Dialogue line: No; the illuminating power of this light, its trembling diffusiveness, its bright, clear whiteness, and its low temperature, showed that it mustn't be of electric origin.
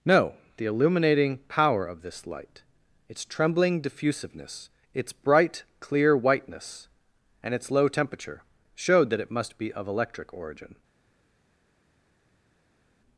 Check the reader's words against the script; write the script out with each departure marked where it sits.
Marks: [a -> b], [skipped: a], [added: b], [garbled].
No; the illuminating power of this light, its trembling diffusiveness, its bright, clear whiteness, and its low temperature, showed that it [mustn't -> must] be of electric origin.